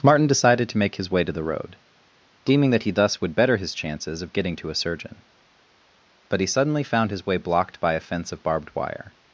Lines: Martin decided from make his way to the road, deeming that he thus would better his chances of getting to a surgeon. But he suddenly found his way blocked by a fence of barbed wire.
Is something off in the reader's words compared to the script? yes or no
yes